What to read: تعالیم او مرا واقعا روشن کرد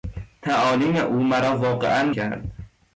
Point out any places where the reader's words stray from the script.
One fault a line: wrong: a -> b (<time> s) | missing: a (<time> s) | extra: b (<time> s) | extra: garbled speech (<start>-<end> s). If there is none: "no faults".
missing: روشن (2.1 s)